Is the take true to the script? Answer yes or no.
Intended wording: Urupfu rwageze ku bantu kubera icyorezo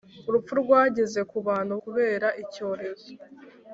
yes